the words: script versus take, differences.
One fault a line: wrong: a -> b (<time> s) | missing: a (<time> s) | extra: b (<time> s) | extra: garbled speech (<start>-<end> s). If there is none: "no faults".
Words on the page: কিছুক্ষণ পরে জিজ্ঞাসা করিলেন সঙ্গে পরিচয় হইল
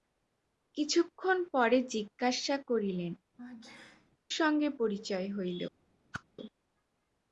no faults